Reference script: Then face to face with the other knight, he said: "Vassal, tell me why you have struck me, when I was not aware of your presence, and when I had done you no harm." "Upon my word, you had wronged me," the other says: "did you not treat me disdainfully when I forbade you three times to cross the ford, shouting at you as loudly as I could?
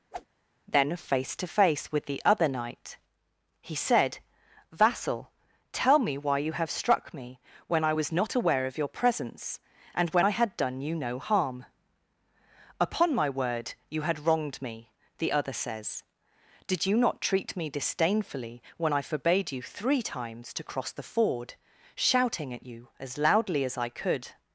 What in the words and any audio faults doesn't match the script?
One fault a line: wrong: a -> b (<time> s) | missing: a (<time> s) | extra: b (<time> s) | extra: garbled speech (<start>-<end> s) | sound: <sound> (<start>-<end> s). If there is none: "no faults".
sound: whoosh (0.1-0.3 s)